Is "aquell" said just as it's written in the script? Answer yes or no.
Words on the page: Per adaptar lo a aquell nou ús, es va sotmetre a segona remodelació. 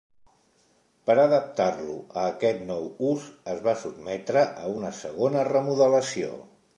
no